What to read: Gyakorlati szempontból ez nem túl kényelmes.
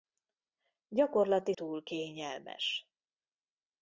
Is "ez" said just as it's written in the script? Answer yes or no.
no